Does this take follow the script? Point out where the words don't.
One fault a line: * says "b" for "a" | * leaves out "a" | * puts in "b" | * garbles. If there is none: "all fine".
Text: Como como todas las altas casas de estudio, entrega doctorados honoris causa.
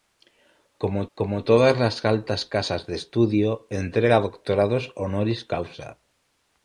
all fine